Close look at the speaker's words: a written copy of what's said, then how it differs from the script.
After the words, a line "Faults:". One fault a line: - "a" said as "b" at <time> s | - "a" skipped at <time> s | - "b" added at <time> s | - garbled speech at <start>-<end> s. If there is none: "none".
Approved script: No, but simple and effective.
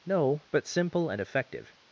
No, but simple and effective.
Faults:
none